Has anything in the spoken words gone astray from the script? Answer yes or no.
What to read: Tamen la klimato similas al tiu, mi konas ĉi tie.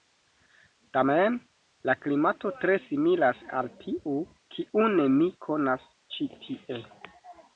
yes